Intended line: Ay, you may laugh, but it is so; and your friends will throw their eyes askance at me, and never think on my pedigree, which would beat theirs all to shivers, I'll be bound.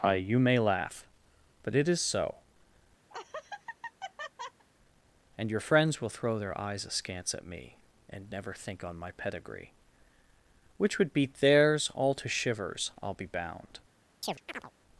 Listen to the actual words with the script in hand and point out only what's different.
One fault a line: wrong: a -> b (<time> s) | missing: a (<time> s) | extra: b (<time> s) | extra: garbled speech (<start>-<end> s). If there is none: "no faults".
no faults